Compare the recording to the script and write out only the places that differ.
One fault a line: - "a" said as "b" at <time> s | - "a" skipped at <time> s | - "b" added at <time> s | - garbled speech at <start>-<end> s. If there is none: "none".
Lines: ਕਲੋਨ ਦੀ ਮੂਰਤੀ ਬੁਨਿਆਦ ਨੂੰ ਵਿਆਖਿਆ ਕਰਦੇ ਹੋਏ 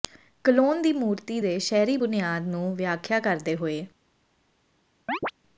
- "ਦੇ ਸ਼ਹਿਰੀ" added at 1.4 s